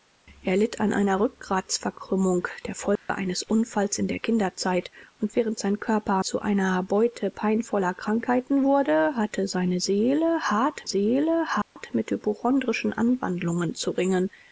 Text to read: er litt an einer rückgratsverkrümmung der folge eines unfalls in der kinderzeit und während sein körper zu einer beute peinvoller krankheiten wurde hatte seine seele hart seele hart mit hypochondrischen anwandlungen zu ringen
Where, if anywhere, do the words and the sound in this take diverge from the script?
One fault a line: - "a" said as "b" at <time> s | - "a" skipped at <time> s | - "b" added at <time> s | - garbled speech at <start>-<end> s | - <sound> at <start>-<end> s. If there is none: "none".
- dropout at 3.0-3.1 s
- dropout at 11.6-11.8 s